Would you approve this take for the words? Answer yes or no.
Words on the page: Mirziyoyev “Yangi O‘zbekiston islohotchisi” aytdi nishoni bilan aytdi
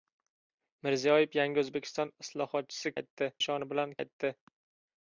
yes